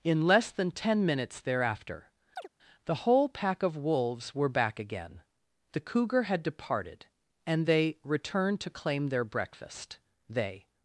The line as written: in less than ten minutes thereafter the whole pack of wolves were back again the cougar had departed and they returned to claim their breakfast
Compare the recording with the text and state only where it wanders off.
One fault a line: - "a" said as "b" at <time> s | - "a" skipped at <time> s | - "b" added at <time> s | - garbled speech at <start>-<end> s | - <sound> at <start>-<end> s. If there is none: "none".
- chirp at 2.4-2.5 s
- "they" added at 10.3 s